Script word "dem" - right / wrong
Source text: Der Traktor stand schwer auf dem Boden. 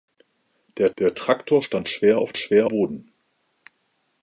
wrong